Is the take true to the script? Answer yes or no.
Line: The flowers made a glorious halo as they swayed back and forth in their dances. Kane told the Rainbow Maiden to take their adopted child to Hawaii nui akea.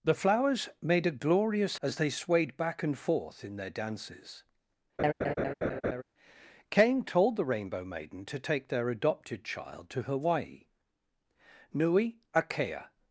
no